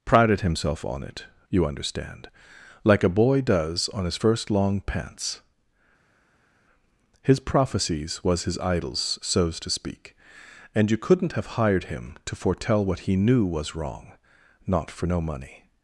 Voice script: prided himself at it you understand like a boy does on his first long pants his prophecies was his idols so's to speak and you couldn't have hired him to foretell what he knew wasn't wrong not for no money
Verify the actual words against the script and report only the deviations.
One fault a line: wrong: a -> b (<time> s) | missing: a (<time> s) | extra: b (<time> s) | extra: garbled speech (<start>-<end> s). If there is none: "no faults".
wrong: at -> on (0.8 s)
wrong: wasn't -> was (13.5 s)